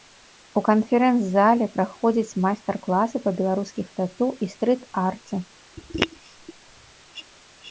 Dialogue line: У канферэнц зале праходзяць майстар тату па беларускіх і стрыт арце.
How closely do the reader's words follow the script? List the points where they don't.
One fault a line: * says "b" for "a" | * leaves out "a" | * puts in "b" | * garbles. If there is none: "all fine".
* says "класы" for "тату"
* puts in "тату"